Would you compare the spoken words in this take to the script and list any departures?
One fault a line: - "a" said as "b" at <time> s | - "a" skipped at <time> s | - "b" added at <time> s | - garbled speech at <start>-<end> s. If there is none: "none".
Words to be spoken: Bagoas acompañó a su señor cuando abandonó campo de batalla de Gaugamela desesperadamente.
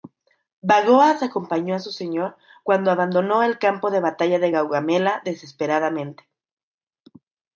- "el" added at 3.4 s